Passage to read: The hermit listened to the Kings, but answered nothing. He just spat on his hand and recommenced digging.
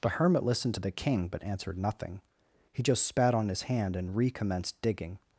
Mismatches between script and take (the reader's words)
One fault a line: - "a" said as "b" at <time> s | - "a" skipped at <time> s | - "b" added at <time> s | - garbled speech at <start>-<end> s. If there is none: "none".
- "Kings" said as "King" at 0.9 s